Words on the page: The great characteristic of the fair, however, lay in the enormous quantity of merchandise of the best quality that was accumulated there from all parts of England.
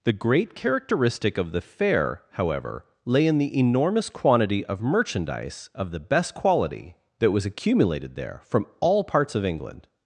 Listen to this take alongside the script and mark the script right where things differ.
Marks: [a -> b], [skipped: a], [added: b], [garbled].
The great characteristic of the fair, however, lay in the enormous quantity of merchandise of the best quality that was accumulated there from all parts of England.